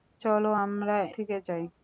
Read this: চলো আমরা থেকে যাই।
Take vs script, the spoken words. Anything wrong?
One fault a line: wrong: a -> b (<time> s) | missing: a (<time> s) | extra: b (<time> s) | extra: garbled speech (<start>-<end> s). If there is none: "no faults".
no faults